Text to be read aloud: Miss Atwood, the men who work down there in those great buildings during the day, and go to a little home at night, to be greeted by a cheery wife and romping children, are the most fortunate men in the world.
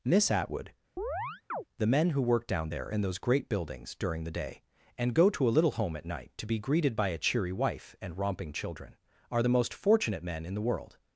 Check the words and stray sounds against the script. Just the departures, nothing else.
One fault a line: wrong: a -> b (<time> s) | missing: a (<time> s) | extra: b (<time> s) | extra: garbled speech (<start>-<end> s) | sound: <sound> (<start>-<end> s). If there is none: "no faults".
sound: chirp (1.0-1.6 s)